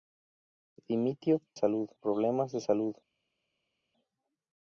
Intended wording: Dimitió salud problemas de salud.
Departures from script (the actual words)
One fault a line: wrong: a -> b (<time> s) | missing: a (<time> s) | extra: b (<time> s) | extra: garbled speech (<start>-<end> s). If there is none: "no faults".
no faults